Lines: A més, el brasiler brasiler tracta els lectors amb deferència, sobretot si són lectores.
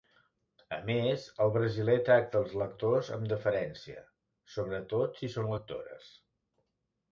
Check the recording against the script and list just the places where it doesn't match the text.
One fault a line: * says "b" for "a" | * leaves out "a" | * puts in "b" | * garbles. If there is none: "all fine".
* leaves out "brasiler"